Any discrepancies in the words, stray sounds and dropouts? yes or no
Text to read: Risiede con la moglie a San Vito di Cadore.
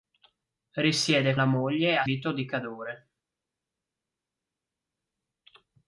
yes